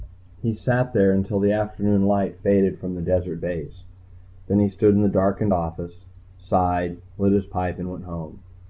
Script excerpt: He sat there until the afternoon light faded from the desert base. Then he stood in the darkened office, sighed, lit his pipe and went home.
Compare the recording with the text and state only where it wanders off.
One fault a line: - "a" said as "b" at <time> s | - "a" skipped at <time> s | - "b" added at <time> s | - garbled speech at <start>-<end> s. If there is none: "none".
none